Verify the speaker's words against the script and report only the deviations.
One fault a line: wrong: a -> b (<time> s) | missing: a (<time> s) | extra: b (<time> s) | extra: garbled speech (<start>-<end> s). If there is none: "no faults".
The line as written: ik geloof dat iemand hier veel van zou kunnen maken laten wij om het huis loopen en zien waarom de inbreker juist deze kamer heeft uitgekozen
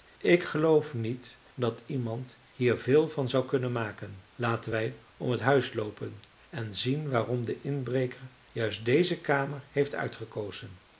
extra: niet (0.9 s)